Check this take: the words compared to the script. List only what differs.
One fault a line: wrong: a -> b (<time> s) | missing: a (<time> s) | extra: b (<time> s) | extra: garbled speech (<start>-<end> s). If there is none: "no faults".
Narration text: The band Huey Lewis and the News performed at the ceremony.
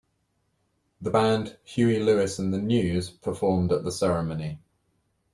no faults